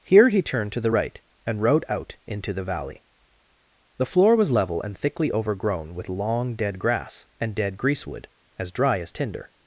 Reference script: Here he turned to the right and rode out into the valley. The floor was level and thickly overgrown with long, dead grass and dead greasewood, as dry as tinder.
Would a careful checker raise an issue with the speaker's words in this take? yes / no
no